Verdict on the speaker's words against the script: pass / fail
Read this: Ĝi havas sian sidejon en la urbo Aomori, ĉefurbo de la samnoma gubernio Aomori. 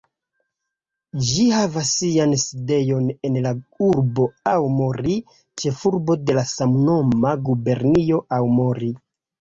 pass